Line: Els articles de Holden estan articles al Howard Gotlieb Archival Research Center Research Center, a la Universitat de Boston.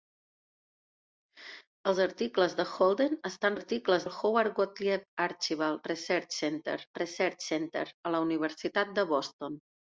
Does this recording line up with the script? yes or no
yes